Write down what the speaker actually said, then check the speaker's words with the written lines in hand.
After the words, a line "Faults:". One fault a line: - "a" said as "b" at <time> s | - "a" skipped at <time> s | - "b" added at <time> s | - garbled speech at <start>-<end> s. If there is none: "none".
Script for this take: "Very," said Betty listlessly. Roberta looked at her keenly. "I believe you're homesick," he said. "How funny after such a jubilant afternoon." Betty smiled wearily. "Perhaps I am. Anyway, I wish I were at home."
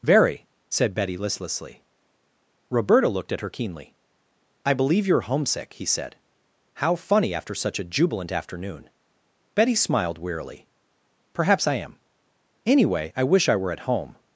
"Very," said Betty listlessly. Roberta looked at her keenly. "I believe you're homesick," he said. "How funny after such a jubilant afternoon." Betty smiled wearily. "Perhaps I am. Anyway, I wish I were at home."
Faults:
none